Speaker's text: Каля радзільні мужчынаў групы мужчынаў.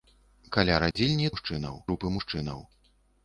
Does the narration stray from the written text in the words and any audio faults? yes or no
yes